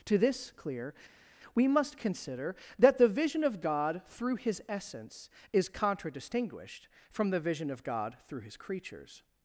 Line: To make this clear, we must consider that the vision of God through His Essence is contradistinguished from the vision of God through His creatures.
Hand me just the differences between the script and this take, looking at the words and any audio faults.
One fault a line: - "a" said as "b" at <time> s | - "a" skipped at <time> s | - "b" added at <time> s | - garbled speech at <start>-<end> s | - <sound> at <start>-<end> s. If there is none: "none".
- "make" skipped at 0.2 s